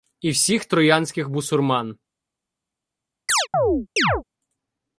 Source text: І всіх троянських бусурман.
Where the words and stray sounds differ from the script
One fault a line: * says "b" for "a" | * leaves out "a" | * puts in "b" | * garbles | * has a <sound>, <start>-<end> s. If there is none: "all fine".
* has a chirp, 3.3-4.2 s